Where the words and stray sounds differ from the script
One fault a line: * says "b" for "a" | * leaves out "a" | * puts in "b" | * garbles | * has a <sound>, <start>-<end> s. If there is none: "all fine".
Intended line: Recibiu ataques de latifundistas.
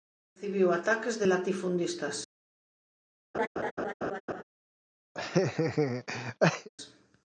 * has a laugh, 3.3-4.4 s
* has a laugh, 5.1-6.7 s